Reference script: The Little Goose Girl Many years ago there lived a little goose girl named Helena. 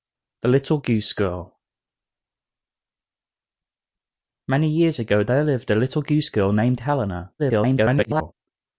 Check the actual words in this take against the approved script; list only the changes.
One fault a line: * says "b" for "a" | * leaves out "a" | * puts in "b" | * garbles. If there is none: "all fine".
* garbles